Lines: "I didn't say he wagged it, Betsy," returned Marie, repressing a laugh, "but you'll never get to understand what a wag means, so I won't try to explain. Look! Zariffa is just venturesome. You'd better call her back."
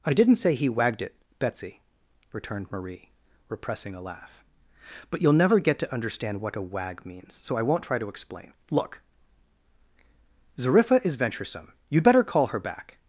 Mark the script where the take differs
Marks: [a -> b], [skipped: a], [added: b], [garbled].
"I didn't say he wagged it, Betsy," returned Marie, repressing a laugh, "but you'll never get to understand what a wag means, so I won't try to explain. Look! Zariffa is [skipped: just] venturesome. You'd better call her back."